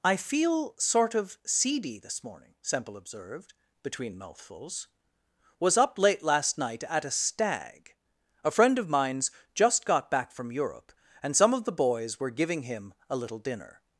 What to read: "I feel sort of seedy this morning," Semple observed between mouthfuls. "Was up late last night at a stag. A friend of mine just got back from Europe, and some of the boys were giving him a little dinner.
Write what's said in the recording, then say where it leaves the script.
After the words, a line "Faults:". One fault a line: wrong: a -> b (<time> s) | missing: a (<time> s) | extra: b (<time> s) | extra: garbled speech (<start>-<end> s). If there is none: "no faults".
"I feel sort of seedy this morning," Semple observed between mouthfuls. "Was up late last night at a stag. A friend of mines just got back from Europe, and some of the boys were giving him a little dinner.
Faults:
wrong: mine -> mines (8.9 s)